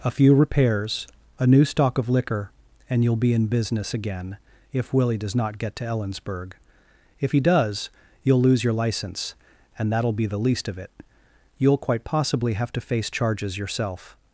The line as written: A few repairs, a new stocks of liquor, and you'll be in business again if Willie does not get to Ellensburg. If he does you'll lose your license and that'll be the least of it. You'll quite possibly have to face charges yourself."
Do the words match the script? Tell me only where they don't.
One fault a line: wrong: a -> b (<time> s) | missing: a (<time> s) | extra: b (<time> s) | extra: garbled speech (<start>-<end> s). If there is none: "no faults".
wrong: stocks -> stock (1.6 s)